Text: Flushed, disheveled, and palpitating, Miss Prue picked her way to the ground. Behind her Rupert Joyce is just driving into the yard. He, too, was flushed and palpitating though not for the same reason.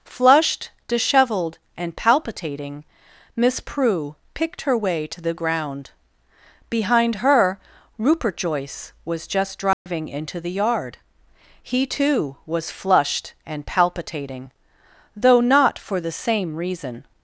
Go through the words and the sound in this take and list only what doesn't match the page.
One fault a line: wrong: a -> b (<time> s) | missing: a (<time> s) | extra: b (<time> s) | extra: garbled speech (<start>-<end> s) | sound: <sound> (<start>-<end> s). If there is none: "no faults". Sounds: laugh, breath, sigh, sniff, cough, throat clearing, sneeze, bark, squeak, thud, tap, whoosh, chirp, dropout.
wrong: is -> was (9.0 s)
sound: dropout (9.7-9.9 s)